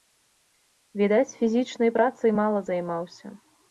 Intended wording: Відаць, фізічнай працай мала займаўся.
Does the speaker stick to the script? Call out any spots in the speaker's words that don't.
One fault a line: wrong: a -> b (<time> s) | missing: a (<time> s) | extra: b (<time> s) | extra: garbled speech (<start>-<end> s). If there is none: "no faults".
no faults